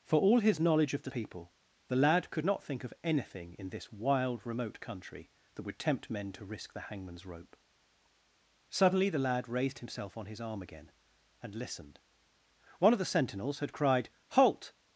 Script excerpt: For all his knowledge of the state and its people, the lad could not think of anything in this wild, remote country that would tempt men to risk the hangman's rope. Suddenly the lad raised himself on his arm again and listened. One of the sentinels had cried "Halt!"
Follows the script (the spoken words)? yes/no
no